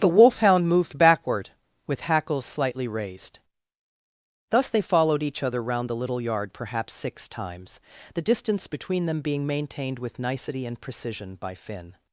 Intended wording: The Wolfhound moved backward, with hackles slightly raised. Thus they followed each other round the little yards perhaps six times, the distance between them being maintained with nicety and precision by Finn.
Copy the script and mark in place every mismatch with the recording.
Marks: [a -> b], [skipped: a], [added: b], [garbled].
The Wolfhound moved backward, with hackles slightly raised. Thus they followed each other round the little [yards -> yard] perhaps six times, the distance between them being maintained with nicety and precision by Finn.